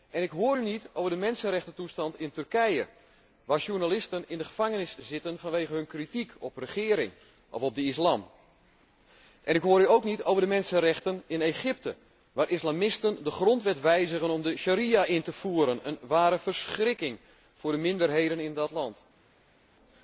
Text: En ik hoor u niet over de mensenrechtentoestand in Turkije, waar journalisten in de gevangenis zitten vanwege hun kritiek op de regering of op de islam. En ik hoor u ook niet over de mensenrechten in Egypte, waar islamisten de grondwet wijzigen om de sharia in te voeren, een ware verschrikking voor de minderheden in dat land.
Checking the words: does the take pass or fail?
pass